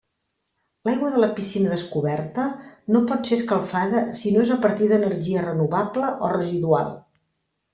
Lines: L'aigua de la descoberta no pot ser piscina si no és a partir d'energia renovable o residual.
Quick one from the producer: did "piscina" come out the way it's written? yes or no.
no